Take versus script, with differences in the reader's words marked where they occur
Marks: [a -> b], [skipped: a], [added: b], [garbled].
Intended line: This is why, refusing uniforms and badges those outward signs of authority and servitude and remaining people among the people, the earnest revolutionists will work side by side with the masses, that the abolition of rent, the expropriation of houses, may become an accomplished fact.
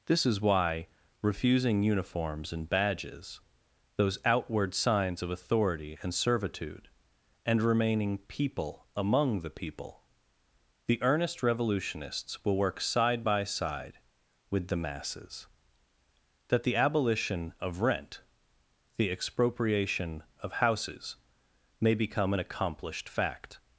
This is why, refusing uniforms and badges those outward signs of authority and servitude and remaining people among the people, the earnest revolutionists will work side by side with the masses, that the abolition of rent, the expropriation of houses, may become an accomplished fact.